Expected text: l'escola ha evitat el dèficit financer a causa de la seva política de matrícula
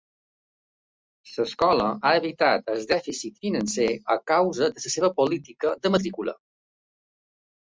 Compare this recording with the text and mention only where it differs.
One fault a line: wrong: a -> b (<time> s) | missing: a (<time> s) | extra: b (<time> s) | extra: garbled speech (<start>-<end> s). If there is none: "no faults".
no faults